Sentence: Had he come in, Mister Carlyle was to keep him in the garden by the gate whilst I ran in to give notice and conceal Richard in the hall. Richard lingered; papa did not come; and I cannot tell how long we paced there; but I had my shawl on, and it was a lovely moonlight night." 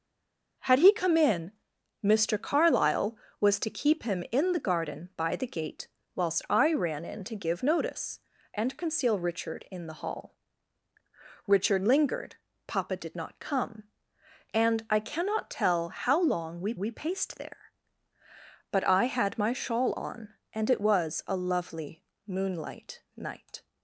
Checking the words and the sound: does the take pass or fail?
fail